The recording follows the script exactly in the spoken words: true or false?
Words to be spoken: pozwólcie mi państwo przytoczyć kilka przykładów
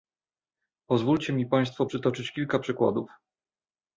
true